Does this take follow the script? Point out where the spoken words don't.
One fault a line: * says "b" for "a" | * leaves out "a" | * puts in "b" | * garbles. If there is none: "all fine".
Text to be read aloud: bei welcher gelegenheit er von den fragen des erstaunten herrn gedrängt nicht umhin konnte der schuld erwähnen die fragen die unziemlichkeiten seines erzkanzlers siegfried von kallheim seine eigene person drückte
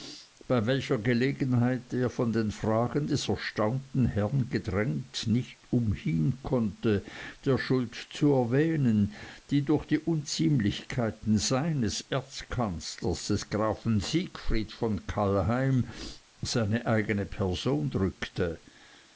* puts in "zu"
* says "durch" for "fragen"
* puts in "des grafen"